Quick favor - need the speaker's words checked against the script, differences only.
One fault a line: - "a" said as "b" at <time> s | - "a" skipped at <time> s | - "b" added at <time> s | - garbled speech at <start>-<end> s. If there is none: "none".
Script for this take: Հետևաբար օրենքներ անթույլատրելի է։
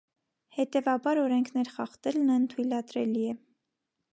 - "խախտելն" added at 1.8 s